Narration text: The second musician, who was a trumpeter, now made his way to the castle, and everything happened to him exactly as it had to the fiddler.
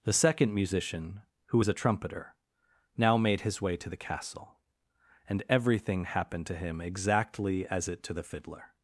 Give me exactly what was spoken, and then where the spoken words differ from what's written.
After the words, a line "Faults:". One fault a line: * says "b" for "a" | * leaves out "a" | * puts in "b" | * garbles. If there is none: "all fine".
The second musician, who is a trumpeter, now made his way to the castle, and everything happened to him exactly as it to the fiddler.
Faults:
* says "is" for "was"
* leaves out "had"